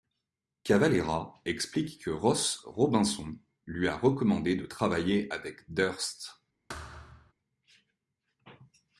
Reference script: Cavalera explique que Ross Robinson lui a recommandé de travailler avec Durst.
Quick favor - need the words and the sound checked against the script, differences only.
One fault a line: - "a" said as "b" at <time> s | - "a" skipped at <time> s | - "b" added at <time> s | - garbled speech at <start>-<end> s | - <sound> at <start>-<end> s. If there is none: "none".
- thud at 6.7-7.3 s